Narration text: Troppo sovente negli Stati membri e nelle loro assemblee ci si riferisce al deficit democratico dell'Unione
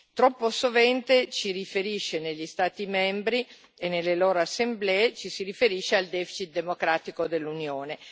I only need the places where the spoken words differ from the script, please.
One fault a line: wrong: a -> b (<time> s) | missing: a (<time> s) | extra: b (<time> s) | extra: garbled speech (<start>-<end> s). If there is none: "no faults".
no faults